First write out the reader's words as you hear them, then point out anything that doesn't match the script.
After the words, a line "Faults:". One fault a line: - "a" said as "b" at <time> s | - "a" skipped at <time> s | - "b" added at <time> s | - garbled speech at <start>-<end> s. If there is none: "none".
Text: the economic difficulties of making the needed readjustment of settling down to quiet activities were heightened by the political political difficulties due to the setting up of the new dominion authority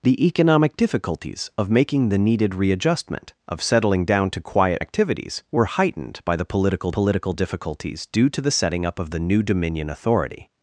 the economic difficulties of making the needed readjustment of settling down to quiet activities were heightened by the political political difficulties due to the setting up of the new dominion authority
Faults:
none